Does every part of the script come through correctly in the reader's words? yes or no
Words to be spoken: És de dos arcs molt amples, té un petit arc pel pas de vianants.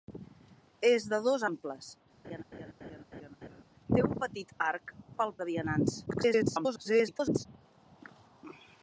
no